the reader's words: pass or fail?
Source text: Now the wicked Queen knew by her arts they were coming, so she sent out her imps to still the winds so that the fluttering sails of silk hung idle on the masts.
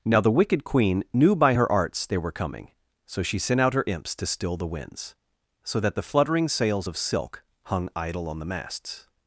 pass